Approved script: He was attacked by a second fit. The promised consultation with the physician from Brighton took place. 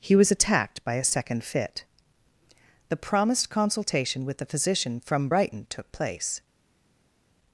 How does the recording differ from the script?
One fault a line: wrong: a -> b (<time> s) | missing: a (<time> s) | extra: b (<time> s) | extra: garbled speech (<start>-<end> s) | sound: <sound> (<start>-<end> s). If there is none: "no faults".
no faults